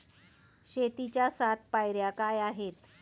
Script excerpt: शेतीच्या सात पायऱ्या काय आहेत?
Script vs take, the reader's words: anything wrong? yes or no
no